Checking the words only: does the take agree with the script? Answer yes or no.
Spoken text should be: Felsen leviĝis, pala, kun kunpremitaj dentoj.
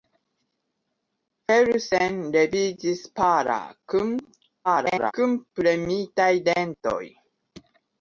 no